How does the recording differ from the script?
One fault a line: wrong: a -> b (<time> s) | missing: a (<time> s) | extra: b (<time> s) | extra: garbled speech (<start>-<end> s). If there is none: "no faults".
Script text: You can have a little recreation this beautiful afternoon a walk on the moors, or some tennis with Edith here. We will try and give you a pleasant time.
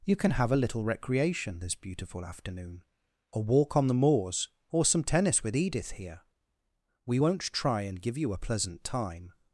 wrong: will -> won't (7.2 s)